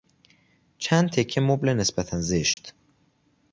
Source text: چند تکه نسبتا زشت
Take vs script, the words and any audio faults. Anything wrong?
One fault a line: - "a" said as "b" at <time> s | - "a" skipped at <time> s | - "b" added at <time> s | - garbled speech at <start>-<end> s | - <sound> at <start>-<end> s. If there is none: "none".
- "مبل" added at 1.4 s
- dropout at 2.5-2.6 s